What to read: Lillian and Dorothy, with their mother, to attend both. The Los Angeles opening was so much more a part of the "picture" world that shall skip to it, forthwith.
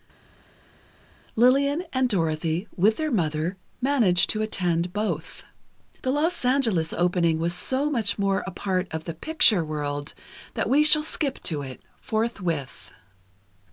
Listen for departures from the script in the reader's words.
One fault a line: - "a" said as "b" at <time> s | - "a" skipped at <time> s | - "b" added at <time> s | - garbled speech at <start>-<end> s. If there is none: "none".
- "managed" added at 3.8 s
- "we" added at 10.7 s